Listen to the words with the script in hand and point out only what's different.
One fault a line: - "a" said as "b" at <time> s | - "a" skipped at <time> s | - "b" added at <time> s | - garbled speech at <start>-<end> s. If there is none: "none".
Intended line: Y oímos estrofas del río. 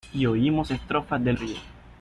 none